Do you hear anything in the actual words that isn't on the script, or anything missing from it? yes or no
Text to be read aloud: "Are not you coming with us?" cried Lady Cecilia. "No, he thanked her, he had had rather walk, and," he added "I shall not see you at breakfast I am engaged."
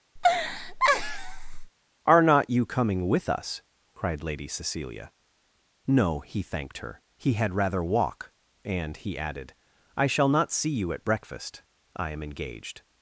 yes